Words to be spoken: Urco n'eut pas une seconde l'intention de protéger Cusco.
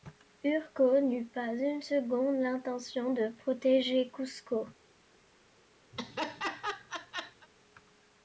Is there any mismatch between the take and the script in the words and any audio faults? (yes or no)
yes